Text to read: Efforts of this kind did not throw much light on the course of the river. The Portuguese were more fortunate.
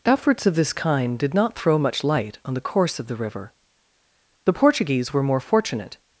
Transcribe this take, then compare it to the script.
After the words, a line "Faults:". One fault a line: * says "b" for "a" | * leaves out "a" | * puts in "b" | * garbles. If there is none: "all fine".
Efforts of this kind did not throw much light on the course of the river. The Portuguese were more fortunate.
Faults:
all fine